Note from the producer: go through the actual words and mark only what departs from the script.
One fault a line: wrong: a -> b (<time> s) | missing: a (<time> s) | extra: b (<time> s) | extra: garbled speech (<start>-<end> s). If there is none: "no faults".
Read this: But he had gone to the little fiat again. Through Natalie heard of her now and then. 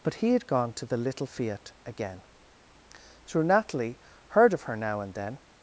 no faults